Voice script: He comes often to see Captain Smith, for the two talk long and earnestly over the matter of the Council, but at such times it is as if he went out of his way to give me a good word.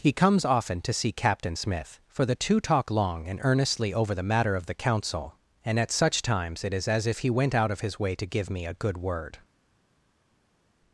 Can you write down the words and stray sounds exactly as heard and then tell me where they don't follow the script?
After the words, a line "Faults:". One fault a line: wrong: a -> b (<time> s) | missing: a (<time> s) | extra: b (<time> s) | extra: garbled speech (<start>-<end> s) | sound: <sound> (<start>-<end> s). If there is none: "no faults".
He comes often to see Captain Smith, for the two talk long and earnestly over the matter of the Council, and at such times it is as if he went out of his way to give me a good word.
Faults:
wrong: but -> and (5.6 s)